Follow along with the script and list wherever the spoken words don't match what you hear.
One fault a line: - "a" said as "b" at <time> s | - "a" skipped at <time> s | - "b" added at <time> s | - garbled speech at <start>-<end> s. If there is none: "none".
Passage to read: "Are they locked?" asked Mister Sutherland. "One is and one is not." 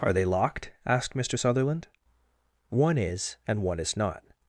none